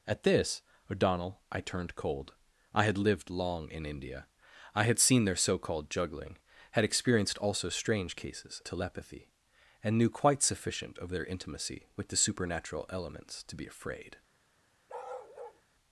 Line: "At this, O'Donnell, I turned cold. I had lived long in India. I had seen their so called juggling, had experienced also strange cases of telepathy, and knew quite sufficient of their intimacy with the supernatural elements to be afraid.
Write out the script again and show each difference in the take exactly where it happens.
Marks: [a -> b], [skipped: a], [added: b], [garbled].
"At this, O'Donnell, I turned cold. I had lived long in India. I had seen their so called juggling, had experienced also strange cases [skipped: of] telepathy, and knew quite sufficient of their intimacy with the supernatural elements to be afraid.